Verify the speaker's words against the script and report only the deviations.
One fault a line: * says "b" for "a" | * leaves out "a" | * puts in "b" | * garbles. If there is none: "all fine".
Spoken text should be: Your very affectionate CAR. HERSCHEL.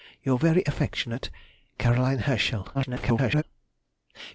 * garbles